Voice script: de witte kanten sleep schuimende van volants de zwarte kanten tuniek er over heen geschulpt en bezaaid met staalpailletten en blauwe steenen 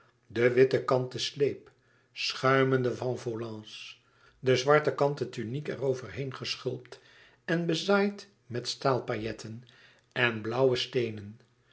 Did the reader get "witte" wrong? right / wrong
right